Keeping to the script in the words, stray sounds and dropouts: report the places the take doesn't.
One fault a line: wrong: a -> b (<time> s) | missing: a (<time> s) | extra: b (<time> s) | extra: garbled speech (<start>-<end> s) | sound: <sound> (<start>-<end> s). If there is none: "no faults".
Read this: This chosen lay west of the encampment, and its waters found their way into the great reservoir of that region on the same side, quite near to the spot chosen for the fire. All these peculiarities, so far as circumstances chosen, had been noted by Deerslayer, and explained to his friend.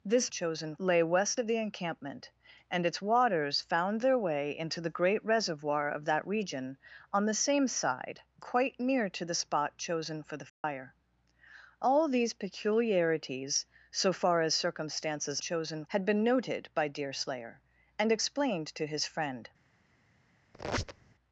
sound: dropout (10.5-10.6 s)
sound: squeak (20.5-21.1 s)